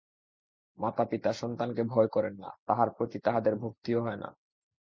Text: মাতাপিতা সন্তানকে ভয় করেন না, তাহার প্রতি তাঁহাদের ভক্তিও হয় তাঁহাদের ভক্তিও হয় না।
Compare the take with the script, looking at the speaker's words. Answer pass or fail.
fail